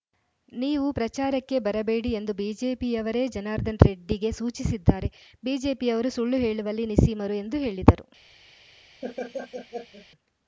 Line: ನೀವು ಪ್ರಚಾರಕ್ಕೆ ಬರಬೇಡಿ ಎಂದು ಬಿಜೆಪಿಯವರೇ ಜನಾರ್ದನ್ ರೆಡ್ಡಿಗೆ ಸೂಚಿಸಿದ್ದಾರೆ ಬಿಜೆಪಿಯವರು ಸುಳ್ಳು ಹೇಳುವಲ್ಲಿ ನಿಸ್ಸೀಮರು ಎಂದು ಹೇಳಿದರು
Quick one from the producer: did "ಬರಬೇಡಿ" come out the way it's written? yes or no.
yes